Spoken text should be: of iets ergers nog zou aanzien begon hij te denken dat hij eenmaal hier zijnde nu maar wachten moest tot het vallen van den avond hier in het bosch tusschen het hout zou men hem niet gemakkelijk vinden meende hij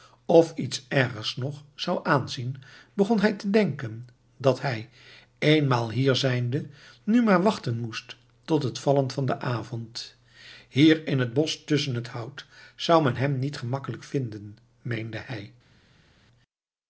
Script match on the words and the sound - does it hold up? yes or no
yes